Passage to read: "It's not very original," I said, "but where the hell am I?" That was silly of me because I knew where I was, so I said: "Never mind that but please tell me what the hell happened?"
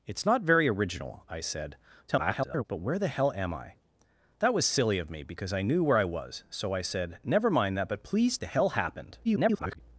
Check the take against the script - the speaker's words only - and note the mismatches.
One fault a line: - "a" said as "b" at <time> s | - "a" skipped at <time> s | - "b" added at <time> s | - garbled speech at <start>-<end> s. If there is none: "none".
- garbled speech at 2.1-2.6 s
- "tell me what" skipped at 8.4 s
- garbled speech at 9.2-9.8 s